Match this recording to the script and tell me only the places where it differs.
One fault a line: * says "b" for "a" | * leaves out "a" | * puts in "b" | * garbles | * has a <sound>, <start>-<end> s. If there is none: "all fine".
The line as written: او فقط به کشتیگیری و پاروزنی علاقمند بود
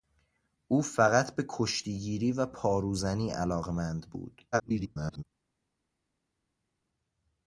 * garbles